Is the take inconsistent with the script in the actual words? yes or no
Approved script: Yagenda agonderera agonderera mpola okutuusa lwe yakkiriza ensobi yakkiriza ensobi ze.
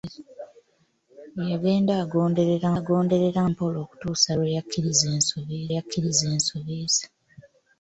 no